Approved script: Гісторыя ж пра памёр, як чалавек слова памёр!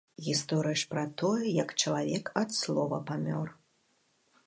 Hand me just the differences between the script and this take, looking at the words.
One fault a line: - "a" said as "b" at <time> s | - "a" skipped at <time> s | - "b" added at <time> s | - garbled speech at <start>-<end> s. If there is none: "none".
- "памёр" said as "тое" at 1.2 s
- "ад" added at 2.5 s